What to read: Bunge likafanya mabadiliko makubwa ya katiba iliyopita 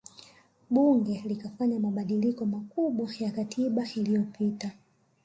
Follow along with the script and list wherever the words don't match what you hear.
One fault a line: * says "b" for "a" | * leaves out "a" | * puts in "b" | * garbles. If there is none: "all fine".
all fine